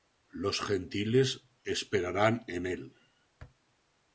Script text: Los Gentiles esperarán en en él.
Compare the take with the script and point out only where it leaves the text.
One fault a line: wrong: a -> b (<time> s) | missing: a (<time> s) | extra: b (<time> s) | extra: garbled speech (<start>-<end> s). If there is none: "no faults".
missing: en (2.7 s)